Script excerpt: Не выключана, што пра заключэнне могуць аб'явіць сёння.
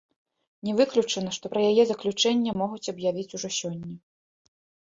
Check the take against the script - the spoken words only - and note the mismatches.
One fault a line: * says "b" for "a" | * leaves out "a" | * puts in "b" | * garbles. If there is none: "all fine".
* puts in "яе"
* puts in "ужо"